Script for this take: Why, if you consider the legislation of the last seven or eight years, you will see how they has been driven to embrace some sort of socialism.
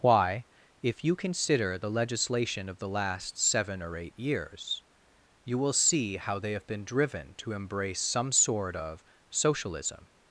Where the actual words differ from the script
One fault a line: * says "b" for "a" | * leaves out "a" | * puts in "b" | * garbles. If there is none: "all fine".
* says "have" for "has"